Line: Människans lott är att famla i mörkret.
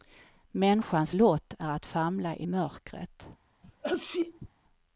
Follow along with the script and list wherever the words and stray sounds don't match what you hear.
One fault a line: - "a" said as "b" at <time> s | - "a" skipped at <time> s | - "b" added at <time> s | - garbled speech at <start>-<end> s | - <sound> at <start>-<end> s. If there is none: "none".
- sneeze at 3.6-4.5 s